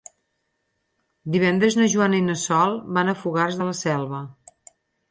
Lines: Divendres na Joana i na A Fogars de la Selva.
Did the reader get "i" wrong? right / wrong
right